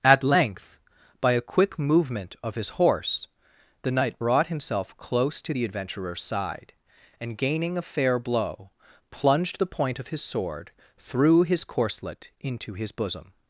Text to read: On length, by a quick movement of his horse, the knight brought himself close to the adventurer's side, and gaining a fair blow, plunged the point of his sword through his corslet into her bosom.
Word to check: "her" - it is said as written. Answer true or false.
false